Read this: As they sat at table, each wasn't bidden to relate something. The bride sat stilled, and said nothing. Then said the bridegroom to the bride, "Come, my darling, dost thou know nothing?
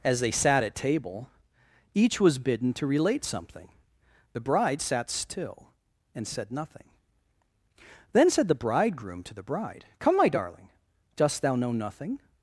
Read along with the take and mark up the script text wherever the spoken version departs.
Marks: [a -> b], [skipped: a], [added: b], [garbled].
As they sat at table, each [wasn't -> was] bidden to relate something. The bride sat [stilled, -> still] and said nothing. Then said the bridegroom to the bride, "Come, my darling, dost thou know nothing?